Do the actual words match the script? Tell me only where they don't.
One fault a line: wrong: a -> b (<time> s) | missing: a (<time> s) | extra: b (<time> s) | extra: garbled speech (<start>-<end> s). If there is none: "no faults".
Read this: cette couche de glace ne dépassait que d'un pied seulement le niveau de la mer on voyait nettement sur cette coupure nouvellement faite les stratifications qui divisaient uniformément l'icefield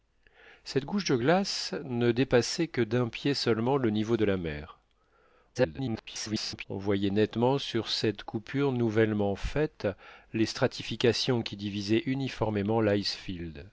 extra: garbled speech (5.5-6.6 s)